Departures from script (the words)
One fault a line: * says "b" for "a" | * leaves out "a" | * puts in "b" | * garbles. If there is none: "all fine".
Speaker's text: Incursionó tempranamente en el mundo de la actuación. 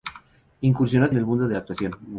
* leaves out "tempranamente"